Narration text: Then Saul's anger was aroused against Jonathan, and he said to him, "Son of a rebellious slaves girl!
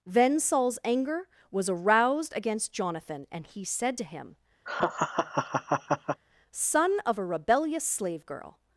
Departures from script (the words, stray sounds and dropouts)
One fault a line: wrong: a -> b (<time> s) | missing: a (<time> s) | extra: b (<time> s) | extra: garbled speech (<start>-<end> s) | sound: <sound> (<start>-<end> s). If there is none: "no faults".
sound: laugh (4.7-6.2 s)
wrong: slaves -> slave (7.8 s)